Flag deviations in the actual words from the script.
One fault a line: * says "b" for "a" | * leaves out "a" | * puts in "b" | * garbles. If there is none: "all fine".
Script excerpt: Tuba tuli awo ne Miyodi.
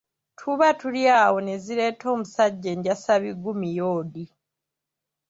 * puts in "zireeta omusajja enjasabiggu"